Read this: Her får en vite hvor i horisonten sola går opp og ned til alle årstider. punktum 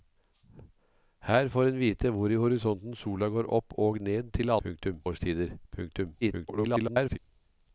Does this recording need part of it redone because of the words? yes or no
yes